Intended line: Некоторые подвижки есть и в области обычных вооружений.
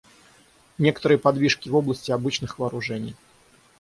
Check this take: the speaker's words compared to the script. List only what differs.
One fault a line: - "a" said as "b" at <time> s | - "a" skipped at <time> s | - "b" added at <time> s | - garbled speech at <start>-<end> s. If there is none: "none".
- "есть" skipped at 1.7 s